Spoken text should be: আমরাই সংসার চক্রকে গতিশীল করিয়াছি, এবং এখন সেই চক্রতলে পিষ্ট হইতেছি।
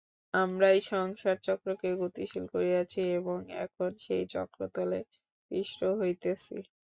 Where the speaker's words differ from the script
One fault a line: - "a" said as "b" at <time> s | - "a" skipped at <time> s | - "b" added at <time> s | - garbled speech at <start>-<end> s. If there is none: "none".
none